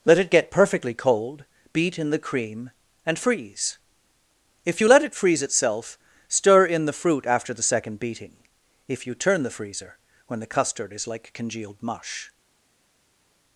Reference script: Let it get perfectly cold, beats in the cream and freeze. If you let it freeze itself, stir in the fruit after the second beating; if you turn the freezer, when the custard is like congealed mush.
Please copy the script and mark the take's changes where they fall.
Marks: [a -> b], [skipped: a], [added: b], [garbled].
Let it get perfectly cold, [beats -> beat] in the cream and freeze. If you let it freeze itself, stir in the fruit after the second beating; if you turn the freezer, when the custard is like congealed mush.